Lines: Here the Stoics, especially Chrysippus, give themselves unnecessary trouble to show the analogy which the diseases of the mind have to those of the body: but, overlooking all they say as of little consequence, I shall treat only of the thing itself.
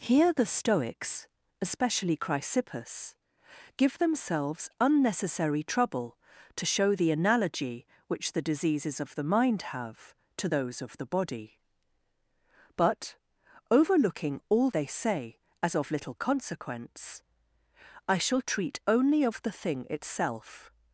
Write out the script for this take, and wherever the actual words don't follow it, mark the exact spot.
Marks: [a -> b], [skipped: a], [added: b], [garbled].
Here the Stoics, especially Chrysippus, give themselves unnecessary trouble to show the analogy which the diseases of the mind have to those of the body: but, overlooking all they say as of little consequence, I shall treat only of the thing itself.